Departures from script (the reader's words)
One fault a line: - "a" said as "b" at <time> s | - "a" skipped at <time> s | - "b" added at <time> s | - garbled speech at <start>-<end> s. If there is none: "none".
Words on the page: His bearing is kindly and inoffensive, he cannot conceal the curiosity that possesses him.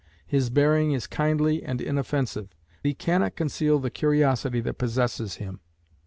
none